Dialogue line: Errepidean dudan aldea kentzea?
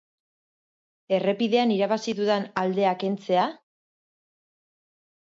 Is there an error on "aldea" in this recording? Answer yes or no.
no